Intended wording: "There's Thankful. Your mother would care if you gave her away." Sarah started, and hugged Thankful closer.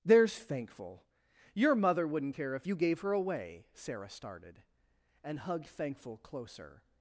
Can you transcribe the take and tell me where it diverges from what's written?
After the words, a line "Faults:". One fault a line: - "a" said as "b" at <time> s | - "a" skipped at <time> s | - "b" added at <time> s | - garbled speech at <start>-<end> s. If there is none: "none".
"There's Thankful. Your mother wouldn't care if you gave her away." Sarah started, and hugged Thankful closer.
Faults:
- "would" said as "wouldn't" at 2.1 s